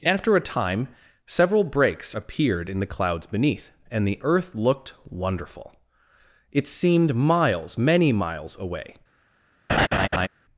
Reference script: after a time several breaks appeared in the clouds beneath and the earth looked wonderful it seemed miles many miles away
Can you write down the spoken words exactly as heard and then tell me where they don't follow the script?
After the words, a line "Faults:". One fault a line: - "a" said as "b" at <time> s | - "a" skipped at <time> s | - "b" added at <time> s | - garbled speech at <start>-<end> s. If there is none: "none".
after a time several breaks appeared in the clouds beneath and the earth looked wonderful it seemed miles many miles away
Faults:
none